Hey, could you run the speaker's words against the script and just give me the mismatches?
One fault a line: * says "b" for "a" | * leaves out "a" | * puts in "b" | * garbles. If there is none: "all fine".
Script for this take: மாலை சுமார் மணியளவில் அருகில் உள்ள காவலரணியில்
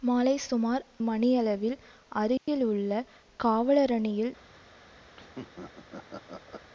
all fine